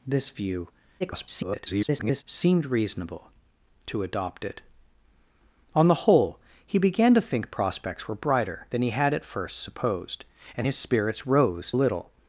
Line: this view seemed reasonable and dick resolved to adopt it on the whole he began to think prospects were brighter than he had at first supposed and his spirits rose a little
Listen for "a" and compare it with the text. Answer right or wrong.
wrong